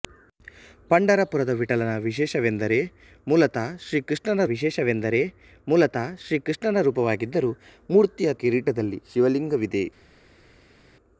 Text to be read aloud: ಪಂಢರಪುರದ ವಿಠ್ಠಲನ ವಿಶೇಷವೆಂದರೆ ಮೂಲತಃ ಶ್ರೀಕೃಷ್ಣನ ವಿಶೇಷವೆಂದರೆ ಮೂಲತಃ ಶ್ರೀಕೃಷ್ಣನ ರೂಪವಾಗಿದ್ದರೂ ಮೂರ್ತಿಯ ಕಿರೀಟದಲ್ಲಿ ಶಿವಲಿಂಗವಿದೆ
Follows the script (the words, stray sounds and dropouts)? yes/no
yes